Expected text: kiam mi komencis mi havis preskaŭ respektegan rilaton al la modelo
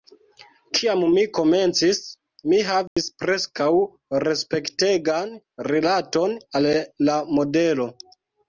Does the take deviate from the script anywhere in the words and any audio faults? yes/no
yes